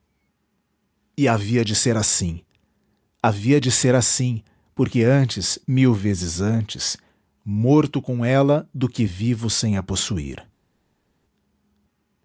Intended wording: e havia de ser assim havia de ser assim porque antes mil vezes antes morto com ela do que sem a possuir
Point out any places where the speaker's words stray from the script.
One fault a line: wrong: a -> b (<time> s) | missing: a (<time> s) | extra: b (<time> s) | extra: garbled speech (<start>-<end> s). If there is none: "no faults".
extra: vivo (9.0 s)